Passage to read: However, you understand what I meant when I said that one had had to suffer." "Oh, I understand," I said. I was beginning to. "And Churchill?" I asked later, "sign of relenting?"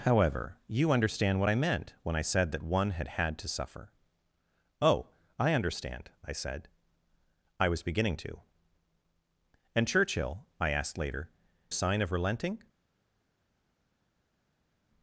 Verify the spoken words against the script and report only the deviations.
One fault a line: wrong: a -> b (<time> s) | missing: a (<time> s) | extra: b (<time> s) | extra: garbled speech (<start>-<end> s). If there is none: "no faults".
no faults